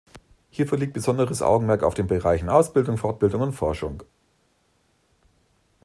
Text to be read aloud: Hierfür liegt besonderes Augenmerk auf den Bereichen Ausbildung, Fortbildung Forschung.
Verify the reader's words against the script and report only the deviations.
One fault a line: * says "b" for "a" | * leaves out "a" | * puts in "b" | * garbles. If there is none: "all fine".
* puts in "und"